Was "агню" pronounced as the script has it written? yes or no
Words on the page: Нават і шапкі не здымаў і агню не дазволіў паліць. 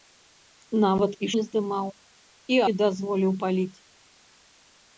no